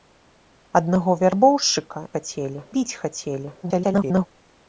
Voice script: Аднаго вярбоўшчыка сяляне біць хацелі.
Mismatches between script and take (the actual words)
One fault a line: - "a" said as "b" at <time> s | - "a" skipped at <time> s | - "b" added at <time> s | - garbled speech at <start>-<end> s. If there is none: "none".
- "сяляне" said as "хацелі" at 2.2 s
- garbled speech at 3.6-4.3 s